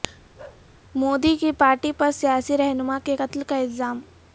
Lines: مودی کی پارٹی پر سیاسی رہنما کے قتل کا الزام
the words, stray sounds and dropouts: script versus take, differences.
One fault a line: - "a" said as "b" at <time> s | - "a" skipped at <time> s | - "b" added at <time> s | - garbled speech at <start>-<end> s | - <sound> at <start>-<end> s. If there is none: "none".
- bark at 0.4-0.7 s